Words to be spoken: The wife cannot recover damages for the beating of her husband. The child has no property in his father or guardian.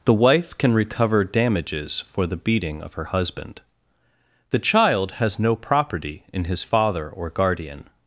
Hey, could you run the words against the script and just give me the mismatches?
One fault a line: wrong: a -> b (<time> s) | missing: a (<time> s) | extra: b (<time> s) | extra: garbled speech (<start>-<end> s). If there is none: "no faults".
wrong: cannot -> can (0.6 s)